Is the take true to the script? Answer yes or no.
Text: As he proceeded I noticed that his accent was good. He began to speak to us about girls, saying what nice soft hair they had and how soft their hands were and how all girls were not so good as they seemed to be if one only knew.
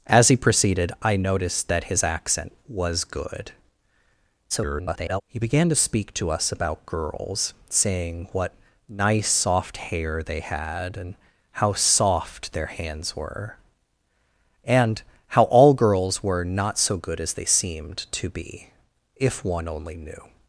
no